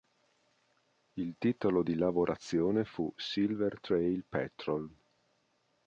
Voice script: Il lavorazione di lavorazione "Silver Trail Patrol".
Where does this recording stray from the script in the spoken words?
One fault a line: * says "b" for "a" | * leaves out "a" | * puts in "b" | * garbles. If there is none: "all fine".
* says "titolo" for "lavorazione"
* puts in "fu"